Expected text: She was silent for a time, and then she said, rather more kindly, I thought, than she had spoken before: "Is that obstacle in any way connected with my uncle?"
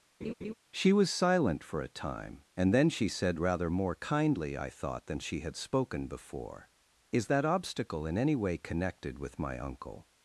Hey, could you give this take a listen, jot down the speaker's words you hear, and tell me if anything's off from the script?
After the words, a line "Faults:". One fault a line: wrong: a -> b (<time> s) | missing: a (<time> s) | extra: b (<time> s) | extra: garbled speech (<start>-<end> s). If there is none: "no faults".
She was silent for a time, and then she said, rather more kindly, I thought, than she had spoken before: "Is that obstacle in any way connected with my uncle?"
Faults:
no faults